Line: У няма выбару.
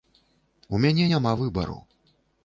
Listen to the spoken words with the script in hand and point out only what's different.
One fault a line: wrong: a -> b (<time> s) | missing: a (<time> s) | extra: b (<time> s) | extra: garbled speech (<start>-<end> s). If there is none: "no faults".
extra: мяне (0.8 s)